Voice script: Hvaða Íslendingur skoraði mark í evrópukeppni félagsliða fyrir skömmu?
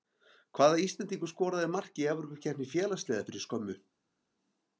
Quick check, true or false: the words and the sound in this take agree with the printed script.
true